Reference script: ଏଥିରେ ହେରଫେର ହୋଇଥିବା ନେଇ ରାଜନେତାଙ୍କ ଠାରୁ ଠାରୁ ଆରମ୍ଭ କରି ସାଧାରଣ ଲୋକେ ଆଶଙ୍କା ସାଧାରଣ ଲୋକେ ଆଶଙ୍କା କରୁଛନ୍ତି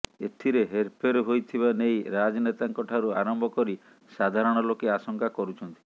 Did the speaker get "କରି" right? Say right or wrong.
right